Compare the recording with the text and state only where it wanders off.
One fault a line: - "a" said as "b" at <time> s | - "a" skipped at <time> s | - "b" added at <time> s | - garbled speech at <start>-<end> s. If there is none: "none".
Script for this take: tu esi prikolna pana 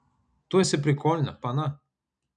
none